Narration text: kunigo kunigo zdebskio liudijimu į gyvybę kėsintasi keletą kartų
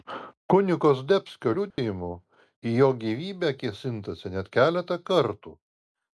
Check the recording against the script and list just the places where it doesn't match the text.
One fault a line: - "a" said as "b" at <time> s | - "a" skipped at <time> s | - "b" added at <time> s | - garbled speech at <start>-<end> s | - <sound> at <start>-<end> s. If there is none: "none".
- "kunigo" skipped at 0.9 s
- dropout at 1.7-1.8 s
- "jo" added at 2.8 s
- "net" added at 4.4 s